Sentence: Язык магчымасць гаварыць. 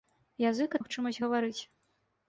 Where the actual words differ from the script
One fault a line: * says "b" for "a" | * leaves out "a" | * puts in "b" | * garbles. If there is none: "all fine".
all fine